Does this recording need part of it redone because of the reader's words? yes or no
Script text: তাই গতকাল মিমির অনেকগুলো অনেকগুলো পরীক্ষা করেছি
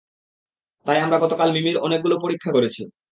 yes